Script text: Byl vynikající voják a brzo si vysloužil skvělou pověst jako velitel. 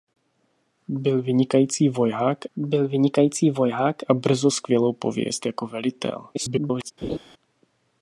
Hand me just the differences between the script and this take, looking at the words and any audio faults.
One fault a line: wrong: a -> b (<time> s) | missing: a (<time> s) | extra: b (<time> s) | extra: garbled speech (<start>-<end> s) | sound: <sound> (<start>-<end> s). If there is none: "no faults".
extra: byl vynikající voják (2.6 s)
missing: si vysloužil (4.5 s)
extra: garbled speech (6.3-6.9 s)
sound: laugh (7.0-7.2 s)